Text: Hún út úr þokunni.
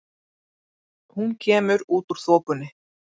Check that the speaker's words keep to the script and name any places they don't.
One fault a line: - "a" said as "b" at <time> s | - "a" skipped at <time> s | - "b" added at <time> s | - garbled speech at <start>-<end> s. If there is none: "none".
- "kemur" added at 1.4 s